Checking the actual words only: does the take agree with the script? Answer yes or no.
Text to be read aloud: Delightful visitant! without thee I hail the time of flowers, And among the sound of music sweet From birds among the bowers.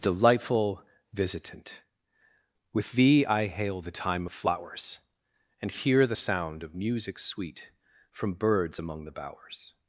no